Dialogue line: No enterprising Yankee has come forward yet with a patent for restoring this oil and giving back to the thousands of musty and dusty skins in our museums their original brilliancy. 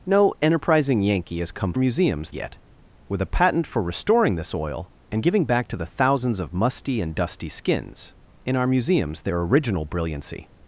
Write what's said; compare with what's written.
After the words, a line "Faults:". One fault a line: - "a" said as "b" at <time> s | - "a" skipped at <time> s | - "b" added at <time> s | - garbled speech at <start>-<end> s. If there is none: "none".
No enterprising Yankee has come museums yet with a patent for restoring this oil and giving back to the thousands of musty and dusty skins in our museums their original brilliancy.
Faults:
- "forward" said as "museums" at 1.8 s